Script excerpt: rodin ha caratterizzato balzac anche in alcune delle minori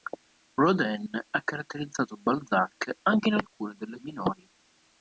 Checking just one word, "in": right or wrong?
right